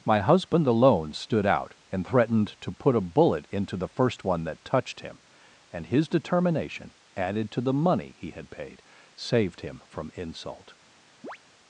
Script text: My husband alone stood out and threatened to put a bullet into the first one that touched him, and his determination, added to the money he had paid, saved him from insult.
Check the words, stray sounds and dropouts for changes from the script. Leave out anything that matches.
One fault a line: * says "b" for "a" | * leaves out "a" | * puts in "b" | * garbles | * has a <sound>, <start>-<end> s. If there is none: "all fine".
* has a chirp, 11.2-11.4 s